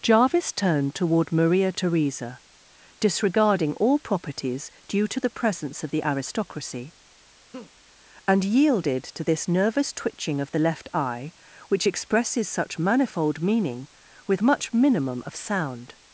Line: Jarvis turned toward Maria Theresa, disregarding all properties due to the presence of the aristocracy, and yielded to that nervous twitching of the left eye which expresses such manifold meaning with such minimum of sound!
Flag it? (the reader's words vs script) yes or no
yes